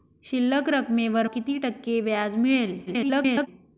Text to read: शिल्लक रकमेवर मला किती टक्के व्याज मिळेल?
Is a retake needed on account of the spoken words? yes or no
yes